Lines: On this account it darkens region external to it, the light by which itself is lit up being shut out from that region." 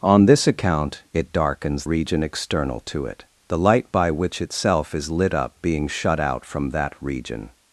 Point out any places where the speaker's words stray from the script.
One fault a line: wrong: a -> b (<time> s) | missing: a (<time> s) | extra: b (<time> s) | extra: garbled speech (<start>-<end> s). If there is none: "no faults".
no faults